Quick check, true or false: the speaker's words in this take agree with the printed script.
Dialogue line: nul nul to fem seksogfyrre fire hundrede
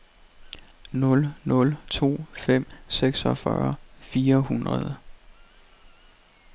true